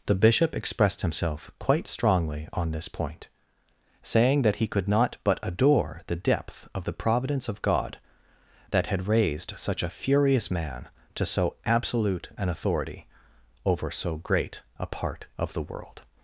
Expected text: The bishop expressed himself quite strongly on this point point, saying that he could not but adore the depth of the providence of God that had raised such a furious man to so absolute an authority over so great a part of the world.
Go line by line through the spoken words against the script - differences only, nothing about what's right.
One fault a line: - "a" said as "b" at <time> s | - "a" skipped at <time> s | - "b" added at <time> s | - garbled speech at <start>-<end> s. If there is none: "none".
- "point" skipped at 3.3 s